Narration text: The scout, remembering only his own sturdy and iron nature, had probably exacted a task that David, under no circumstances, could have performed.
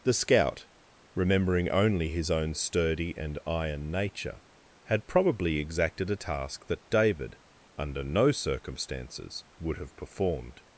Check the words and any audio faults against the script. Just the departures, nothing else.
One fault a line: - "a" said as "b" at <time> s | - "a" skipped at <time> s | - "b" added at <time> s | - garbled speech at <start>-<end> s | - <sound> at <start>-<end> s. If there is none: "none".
- "could" said as "would" at 9.6 s